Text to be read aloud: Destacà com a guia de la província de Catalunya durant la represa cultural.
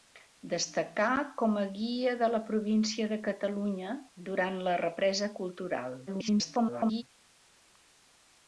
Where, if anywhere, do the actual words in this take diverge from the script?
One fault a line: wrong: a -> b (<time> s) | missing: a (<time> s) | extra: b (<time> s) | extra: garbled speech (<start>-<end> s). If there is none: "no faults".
extra: garbled speech (6.1-7.0 s)